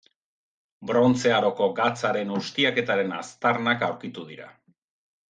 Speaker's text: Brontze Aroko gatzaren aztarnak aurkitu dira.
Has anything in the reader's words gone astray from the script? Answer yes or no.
yes